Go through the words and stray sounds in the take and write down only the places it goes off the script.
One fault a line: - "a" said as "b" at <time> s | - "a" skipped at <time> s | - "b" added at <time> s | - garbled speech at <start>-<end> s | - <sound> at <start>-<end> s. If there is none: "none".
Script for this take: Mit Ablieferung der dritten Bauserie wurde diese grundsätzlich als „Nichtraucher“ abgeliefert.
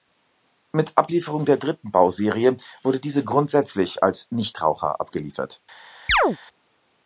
- chirp at 6.1-6.4 s